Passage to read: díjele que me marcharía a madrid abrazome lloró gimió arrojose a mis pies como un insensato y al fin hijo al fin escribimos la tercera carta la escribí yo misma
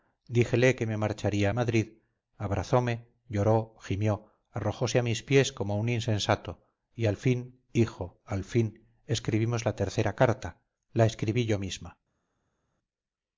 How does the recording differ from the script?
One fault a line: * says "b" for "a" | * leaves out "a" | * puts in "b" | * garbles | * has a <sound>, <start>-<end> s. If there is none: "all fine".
all fine